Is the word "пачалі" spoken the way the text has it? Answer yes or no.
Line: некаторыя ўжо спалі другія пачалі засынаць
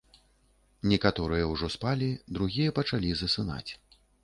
yes